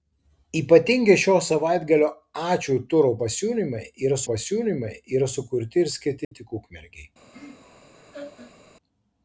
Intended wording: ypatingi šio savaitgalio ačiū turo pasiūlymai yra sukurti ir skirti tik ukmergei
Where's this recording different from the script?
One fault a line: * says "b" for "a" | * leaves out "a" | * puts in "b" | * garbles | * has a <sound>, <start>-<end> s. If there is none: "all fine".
* puts in "pasiūlymai yra"
* has a dropout, 6.2-6.3 s
* has a laugh, 7.3-8.6 s